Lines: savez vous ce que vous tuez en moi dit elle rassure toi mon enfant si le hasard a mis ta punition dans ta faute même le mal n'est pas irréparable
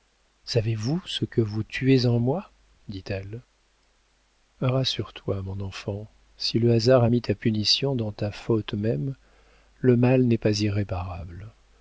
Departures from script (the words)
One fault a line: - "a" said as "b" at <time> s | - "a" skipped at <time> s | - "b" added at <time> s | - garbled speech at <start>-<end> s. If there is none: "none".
none